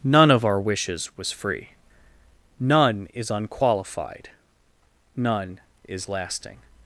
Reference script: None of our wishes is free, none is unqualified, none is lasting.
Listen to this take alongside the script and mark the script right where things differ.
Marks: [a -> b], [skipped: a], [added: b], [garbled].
None of our wishes [is -> was] free, none is unqualified, none is lasting.